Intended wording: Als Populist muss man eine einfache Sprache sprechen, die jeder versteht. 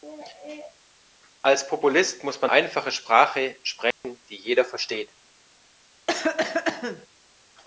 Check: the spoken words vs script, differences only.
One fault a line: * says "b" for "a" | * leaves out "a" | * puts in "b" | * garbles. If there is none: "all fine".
* leaves out "eine"